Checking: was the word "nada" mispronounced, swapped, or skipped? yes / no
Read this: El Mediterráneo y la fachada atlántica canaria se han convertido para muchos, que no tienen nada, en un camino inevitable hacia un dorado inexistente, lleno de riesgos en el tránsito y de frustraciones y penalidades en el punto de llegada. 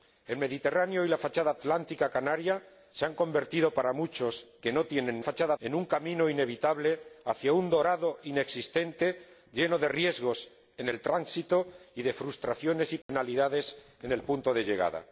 yes